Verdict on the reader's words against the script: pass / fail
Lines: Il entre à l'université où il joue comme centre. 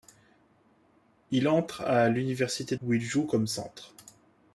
pass